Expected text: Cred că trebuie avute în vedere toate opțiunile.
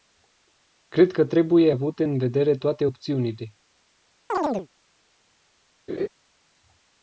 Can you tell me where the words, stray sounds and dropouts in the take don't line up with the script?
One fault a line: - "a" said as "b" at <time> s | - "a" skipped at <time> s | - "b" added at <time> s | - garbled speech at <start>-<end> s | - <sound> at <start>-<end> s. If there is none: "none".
- chirp at 4.3-4.7 s
- laugh at 5.9-6.1 s